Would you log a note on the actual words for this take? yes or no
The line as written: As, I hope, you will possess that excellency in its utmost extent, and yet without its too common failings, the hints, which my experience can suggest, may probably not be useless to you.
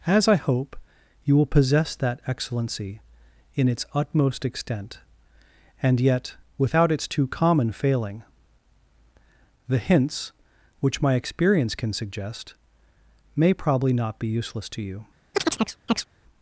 yes